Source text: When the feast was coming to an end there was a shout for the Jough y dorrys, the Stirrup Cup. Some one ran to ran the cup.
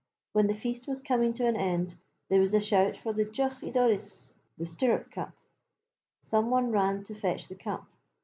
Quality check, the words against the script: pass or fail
fail